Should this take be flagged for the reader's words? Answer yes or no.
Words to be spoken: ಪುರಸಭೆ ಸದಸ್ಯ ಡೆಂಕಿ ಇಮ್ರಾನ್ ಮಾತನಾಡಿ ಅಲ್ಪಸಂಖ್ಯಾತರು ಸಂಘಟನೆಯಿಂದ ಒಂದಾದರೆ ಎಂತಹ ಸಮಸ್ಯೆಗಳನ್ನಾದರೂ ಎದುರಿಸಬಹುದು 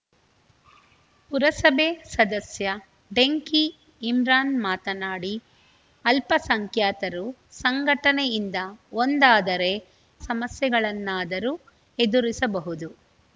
yes